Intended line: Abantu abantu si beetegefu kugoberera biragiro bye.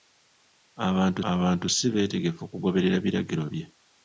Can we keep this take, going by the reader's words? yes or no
yes